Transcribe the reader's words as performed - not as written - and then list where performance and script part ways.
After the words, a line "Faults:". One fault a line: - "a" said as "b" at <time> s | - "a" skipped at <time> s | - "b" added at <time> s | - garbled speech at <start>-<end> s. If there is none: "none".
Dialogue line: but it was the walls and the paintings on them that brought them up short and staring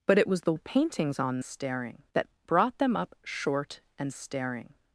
but it was the the paintings on staring that brought them up short and staring
Faults:
- "walls and" skipped at 0.5 s
- "them" said as "staring" at 1.4 s